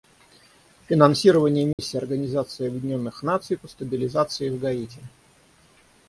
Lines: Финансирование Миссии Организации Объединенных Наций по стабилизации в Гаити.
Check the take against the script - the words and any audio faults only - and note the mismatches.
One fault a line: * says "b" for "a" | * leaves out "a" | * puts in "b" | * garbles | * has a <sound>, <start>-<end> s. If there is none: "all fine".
* has a dropout, 1.7-1.8 s